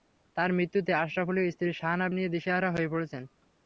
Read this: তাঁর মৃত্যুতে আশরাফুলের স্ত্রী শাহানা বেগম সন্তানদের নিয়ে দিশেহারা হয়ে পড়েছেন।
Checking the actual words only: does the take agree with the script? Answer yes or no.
no